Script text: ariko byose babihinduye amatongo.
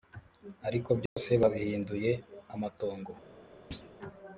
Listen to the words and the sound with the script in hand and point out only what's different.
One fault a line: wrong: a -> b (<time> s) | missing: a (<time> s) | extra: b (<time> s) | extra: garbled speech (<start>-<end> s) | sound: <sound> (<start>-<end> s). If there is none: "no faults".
sound: dropout (1.1-1.2 s)
sound: thud (3.7-3.9 s)